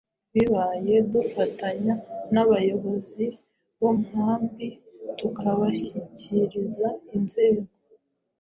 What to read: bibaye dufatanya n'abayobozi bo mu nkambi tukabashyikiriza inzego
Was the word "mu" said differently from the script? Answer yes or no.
yes